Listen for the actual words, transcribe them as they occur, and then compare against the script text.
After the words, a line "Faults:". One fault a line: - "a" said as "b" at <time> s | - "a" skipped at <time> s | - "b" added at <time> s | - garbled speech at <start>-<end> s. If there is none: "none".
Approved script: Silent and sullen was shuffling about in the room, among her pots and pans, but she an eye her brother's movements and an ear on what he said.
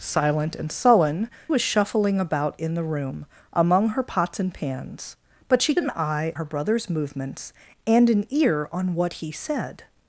Silent and sullen was shuffling about in the room, among her pots and pans, but she an eye her brother's movements and an ear on what he said.
Faults:
none